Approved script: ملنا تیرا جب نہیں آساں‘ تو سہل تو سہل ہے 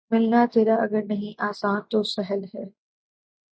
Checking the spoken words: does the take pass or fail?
fail